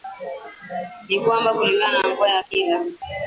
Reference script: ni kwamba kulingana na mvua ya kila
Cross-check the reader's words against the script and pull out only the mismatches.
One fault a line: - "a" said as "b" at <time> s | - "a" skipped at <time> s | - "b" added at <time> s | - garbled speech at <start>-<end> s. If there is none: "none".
none